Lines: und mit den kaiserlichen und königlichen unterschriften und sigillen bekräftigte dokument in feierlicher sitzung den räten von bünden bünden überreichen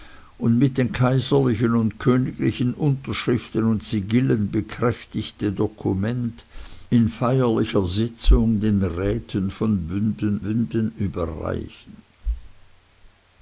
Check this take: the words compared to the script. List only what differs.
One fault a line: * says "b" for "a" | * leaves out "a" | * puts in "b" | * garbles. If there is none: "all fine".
all fine